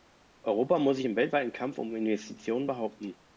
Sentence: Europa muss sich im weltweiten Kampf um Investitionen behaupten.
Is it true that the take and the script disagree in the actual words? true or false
false